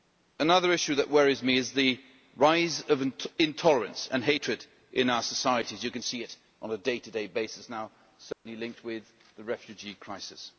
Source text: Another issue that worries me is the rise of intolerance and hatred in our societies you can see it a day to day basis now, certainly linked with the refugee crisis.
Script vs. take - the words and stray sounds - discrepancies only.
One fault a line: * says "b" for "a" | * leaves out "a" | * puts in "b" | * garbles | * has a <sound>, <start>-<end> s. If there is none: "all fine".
* puts in "on"
* has a dropout, 8.3-8.5 s